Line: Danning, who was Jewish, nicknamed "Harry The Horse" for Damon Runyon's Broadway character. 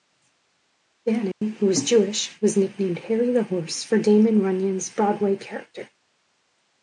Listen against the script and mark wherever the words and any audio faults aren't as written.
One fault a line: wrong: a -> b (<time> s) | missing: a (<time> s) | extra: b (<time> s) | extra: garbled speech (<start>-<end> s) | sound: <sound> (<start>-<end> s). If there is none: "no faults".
sound: dropout (1.3-1.4 s)
extra: was (2.4 s)